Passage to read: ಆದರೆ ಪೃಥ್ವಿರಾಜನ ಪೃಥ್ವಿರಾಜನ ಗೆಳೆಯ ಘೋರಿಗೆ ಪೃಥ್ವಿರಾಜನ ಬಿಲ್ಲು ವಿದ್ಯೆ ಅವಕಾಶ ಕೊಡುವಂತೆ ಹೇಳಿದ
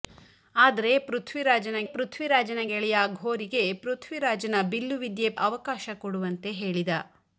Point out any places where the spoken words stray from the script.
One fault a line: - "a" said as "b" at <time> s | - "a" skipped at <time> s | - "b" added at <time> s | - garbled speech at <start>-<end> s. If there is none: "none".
none